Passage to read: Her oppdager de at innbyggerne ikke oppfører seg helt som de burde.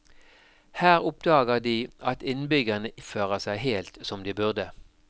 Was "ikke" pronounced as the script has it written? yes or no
no